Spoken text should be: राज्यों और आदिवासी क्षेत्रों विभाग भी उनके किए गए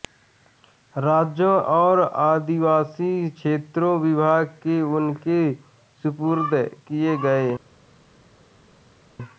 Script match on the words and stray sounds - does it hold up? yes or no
no